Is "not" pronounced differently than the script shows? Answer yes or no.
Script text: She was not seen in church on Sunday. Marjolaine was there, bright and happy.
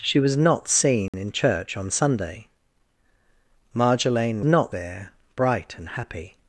no